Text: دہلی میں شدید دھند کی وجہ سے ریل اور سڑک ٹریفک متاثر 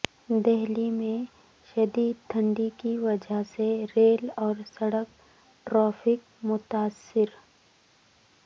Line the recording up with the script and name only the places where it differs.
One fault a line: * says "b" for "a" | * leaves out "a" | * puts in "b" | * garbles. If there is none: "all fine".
all fine